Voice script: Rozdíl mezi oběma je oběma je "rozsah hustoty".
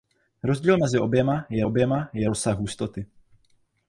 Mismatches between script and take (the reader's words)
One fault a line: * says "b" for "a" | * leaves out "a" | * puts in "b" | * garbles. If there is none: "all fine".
all fine